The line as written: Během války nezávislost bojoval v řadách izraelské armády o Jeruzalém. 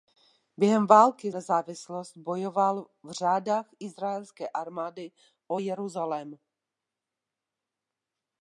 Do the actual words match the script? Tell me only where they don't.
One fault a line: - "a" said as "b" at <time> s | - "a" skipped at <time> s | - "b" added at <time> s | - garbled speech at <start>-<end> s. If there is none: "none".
none